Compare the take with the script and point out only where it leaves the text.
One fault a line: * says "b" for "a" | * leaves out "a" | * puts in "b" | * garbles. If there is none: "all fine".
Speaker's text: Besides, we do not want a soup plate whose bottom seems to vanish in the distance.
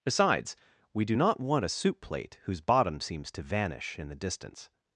all fine